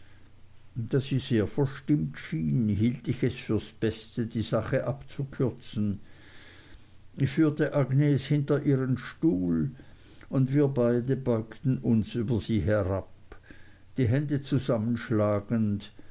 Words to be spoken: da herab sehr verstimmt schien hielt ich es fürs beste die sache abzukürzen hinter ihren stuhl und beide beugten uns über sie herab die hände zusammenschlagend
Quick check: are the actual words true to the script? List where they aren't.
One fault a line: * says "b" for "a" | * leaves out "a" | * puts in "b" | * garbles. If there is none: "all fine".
* says "sie" for "herab"
* puts in "ich führte agnes"
* puts in "wir"